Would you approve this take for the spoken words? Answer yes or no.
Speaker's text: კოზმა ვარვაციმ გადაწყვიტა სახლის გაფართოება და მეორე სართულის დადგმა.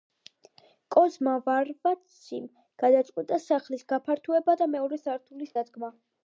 yes